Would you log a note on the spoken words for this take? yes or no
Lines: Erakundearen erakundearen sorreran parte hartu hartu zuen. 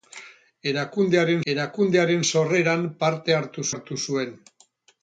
no